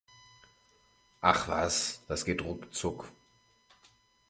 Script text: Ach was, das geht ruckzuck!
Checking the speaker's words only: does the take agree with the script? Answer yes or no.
yes